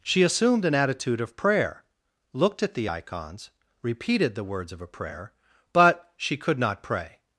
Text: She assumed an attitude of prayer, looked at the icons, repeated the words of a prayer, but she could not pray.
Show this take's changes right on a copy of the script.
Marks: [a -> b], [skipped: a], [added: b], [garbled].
She assumed an attitude of prayer, looked at the icons, repeated the words of a prayer, but she could not pray.